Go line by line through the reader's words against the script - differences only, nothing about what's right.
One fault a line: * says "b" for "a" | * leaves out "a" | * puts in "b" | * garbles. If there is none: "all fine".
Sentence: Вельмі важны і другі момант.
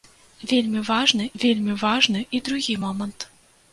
* puts in "вельмі важны"